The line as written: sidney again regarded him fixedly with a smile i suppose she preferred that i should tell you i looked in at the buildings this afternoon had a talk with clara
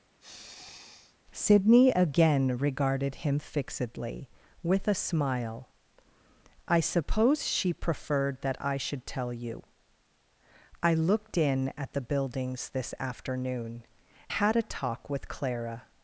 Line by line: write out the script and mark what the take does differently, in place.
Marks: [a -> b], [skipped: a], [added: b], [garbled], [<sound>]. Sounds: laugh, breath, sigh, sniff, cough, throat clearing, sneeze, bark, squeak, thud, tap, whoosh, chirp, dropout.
[sniff] sidney again regarded him fixedly with a smile i suppose she preferred that i should tell you i looked in at the buildings this afternoon had a talk with clara